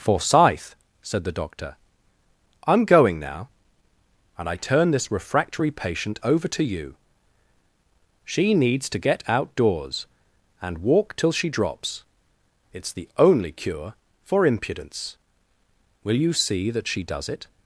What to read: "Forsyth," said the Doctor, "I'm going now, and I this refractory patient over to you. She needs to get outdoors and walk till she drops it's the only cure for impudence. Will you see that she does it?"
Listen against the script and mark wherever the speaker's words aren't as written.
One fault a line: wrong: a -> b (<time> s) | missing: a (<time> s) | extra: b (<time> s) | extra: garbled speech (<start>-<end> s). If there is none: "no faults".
extra: turn (4.5 s)